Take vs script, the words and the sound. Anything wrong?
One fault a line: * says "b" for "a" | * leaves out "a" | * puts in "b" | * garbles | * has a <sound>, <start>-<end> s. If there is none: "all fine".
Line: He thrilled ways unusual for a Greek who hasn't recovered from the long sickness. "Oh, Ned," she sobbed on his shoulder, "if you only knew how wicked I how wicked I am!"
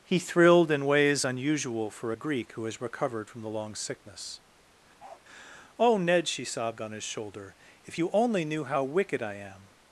* puts in "in"
* says "has" for "hasn't"
* has a bark, 5.0-5.2 s
* leaves out "how wicked I"